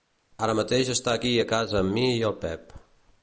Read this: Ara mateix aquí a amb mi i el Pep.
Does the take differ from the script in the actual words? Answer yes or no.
yes